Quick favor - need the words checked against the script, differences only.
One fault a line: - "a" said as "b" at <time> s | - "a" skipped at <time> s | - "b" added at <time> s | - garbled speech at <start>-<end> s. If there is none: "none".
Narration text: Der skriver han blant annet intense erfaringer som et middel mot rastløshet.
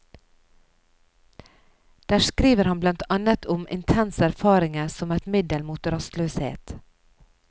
- "om" added at 3.5 s